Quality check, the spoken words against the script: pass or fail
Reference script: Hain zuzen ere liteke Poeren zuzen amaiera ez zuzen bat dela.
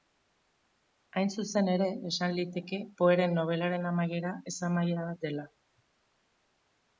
fail